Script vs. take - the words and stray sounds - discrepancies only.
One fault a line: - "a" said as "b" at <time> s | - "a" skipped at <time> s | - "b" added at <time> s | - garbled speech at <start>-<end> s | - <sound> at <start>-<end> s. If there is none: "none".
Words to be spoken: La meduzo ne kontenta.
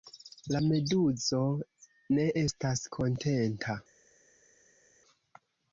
- "estas" added at 2.4 s